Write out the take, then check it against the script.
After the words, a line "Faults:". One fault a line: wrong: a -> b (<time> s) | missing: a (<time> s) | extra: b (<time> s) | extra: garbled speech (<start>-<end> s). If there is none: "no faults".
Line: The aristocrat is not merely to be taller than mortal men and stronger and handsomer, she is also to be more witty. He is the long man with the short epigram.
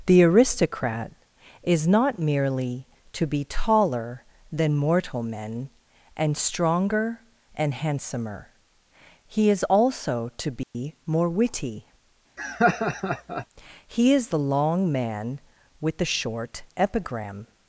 The aristocrat is not merely to be taller than mortal men and stronger and handsomer, he is also to be more witty. He is the long man with the short epigram.
Faults:
wrong: she -> he (9.3 s)